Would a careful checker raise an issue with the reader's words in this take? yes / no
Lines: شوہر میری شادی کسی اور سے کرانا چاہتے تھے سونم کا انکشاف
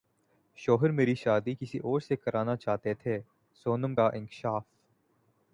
no